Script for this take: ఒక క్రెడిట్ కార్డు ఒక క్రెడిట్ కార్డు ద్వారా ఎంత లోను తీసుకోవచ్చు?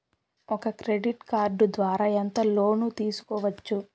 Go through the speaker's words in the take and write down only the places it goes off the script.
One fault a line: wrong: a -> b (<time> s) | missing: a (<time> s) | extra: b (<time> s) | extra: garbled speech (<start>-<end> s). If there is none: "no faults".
missing: ఒక క్రెడిట్ కార్డు (1.6 s)